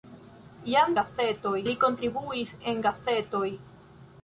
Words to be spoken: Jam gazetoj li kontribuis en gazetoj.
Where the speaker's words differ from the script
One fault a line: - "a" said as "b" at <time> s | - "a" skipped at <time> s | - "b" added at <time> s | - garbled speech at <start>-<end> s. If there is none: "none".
none